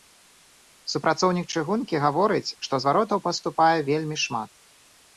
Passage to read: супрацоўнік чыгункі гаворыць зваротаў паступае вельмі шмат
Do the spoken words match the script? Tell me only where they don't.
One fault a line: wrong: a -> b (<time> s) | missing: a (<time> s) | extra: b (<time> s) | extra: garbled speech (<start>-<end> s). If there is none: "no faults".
extra: што (2.7 s)